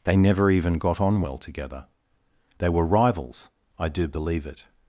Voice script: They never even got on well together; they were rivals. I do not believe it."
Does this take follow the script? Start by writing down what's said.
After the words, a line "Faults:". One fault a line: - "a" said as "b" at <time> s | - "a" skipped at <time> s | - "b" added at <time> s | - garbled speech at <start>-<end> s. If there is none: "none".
They never even got on well together; they were rivals. I do believe it."
Faults:
- "not" skipped at 4.1 s